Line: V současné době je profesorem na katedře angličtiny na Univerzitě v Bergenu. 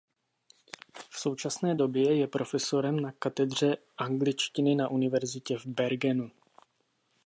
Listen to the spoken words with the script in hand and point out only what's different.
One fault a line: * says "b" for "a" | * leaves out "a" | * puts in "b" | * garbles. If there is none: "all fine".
all fine